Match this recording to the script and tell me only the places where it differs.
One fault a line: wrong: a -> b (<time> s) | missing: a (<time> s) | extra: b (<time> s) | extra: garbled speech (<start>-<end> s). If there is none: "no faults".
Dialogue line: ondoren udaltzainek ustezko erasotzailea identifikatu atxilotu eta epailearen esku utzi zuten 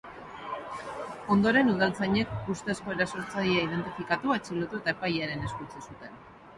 no faults